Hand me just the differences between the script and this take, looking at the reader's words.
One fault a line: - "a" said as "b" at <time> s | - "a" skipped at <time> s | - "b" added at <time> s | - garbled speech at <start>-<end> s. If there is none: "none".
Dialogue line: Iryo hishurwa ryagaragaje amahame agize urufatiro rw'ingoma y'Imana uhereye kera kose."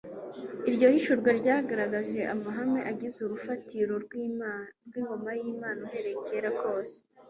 none